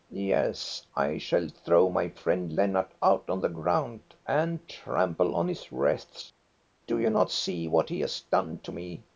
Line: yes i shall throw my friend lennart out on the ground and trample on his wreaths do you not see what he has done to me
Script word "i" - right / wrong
right